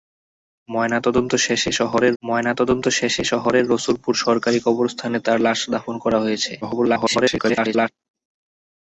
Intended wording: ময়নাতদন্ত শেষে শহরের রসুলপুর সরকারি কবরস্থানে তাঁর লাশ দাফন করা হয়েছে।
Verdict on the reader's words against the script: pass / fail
fail